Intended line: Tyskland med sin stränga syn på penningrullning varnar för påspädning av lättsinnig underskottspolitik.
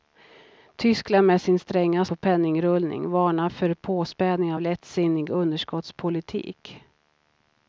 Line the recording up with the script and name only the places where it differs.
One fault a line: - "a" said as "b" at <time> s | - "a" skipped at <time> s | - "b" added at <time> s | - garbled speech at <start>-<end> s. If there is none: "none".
- "syn" skipped at 2.0 s